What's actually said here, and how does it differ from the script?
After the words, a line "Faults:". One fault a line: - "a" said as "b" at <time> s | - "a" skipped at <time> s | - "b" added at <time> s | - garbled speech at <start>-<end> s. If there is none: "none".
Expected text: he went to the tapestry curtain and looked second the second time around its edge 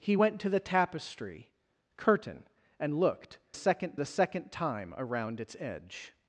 he went to the tapestry curtain and looked second the second time around its edge
Faults:
none